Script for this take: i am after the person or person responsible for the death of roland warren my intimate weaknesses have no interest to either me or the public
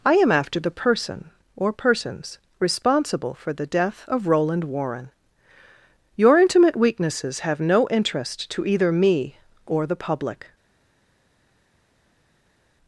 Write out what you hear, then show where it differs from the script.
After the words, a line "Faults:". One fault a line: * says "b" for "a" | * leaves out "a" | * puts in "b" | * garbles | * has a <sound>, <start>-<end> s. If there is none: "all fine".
i am after the person or persons responsible for the death of roland warren your intimate weaknesses have no interest to either me or the public
Faults:
* says "persons" for "person"
* says "your" for "my"